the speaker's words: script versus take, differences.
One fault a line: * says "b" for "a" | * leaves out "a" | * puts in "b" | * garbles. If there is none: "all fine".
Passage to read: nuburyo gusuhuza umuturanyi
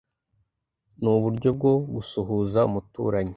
* puts in "bwo"